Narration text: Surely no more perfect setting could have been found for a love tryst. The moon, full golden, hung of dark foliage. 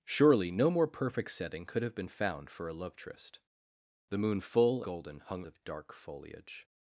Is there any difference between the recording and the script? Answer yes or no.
no